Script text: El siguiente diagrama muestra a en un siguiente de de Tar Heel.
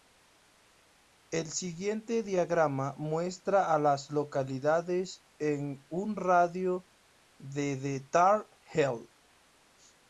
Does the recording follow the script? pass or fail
fail